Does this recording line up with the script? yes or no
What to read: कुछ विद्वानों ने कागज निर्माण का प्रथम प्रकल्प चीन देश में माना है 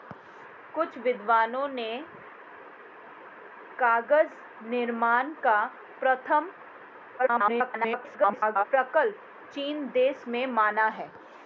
no